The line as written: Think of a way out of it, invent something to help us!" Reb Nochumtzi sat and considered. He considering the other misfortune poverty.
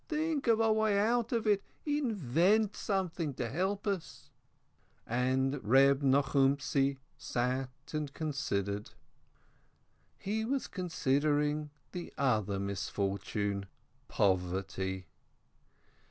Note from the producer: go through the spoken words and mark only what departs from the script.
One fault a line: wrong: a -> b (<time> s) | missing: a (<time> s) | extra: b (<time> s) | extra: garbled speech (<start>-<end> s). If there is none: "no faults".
extra: And (5.0 s)
extra: was (10.4 s)